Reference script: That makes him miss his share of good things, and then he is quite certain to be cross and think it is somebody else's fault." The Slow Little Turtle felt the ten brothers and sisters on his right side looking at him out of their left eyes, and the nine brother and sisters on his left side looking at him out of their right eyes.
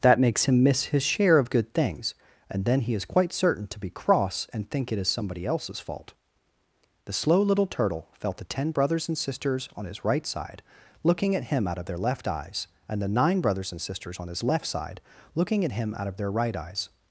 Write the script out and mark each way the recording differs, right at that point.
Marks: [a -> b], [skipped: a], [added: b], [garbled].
That makes him miss his share of good things, and then he is quite certain to be cross and think it is somebody else's fault." The Slow Little Turtle felt the ten brothers and sisters on his right side looking at him out of their left eyes, and the nine [brother -> brothers] and sisters on his left side looking at him out of their right eyes.